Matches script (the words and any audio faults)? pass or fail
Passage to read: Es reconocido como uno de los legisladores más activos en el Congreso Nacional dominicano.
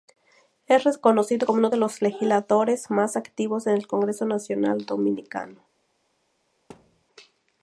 fail